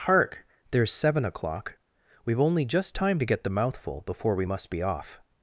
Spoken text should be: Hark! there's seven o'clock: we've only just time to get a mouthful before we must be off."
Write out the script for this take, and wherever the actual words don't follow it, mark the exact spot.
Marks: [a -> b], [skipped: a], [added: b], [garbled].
Hark! there's seven o'clock: we've only just time to get [a -> the] mouthful before we must be off."